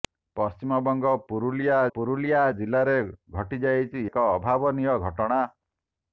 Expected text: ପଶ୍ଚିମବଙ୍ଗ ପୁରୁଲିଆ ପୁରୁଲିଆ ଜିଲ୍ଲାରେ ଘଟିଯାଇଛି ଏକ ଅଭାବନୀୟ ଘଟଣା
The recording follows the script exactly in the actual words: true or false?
true